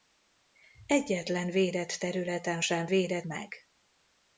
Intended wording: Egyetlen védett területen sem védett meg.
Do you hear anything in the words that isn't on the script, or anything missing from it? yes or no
no